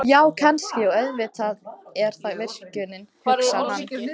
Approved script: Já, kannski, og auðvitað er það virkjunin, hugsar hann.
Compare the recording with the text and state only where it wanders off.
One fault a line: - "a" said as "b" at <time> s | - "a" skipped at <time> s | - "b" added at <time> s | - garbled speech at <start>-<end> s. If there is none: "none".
none